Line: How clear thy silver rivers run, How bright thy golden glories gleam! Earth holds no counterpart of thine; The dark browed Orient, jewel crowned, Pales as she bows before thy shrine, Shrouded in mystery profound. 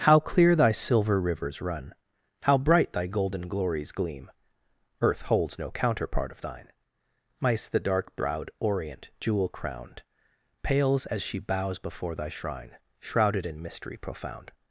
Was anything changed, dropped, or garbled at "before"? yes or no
no